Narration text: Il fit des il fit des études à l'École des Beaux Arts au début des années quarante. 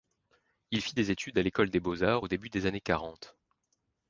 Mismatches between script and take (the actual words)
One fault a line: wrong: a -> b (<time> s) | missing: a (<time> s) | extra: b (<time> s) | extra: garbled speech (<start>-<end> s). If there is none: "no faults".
missing: il fit des (1.1 s)